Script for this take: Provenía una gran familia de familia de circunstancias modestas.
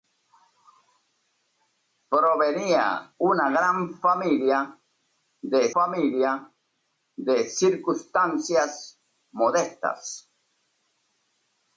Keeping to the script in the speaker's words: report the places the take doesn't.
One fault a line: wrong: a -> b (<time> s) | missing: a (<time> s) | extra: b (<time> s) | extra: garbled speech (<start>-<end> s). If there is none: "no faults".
no faults